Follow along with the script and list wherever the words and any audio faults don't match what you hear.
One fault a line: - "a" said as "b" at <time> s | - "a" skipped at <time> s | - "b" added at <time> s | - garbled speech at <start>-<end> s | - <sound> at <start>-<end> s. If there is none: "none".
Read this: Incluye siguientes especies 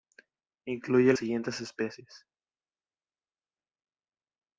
none